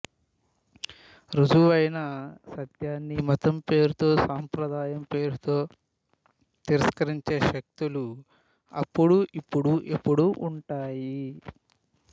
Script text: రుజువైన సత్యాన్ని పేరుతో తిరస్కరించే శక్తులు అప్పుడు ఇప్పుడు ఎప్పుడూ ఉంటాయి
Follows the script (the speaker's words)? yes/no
no